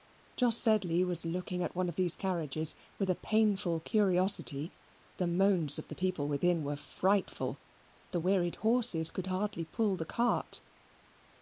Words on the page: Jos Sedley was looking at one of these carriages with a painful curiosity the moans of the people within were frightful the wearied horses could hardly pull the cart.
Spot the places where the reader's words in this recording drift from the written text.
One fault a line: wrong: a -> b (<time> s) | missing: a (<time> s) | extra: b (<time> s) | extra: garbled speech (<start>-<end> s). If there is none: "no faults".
no faults